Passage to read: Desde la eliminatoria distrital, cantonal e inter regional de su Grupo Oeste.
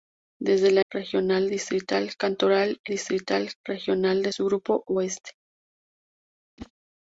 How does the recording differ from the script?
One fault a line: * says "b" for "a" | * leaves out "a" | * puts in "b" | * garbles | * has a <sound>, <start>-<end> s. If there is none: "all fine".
* says "regional" for "eliminatoria"
* says "distrital" for "inter"
* has a whoosh, 6.6-6.7 s